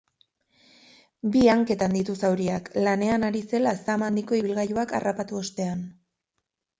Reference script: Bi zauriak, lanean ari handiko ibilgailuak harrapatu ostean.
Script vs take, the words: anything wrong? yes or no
yes